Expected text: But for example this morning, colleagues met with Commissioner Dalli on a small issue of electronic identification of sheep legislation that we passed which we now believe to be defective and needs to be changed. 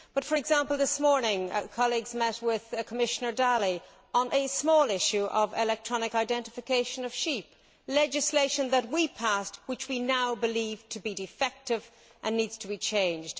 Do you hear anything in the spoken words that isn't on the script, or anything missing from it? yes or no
no